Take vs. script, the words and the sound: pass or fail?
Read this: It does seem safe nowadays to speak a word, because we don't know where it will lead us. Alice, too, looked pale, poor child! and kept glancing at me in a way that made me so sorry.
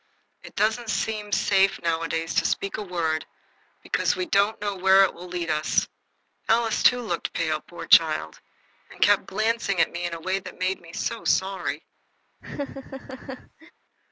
fail